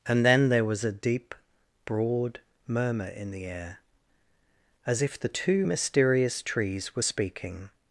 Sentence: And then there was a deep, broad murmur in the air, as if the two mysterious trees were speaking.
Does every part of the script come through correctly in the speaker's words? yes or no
yes